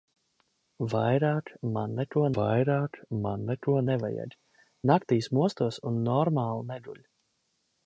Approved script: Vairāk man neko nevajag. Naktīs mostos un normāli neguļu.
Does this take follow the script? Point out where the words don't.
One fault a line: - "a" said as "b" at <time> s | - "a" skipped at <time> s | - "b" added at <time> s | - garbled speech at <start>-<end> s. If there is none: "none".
- "vairāk man neko" added at 2.4 s